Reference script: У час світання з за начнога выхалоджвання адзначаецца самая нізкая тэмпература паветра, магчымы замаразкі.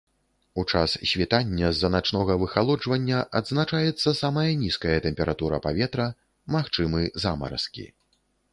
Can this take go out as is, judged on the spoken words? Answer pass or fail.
pass